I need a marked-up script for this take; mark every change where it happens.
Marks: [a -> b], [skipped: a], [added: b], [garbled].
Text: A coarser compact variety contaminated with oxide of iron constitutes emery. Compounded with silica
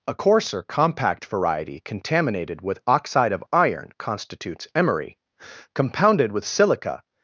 A coarser compact variety contaminated with oxide of iron constitutes emery. Compounded with silica